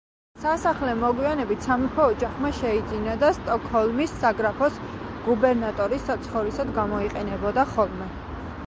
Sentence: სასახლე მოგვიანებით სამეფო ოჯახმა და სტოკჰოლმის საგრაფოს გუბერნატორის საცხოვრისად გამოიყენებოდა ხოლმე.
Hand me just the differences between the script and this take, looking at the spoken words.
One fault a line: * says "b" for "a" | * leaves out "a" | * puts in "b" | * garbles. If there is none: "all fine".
* puts in "შეიძინა"